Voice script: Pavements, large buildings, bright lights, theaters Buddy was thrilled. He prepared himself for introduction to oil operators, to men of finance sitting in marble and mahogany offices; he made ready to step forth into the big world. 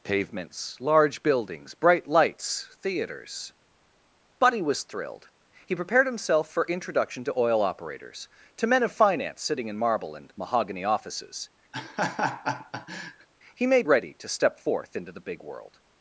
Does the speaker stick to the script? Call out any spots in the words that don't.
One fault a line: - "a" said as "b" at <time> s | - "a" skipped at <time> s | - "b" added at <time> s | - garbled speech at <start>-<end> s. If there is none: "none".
none